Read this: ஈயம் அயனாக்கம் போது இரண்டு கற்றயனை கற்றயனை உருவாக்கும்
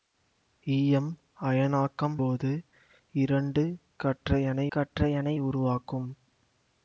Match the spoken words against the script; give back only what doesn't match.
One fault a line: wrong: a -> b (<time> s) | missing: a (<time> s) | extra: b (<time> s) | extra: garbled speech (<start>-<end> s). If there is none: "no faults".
no faults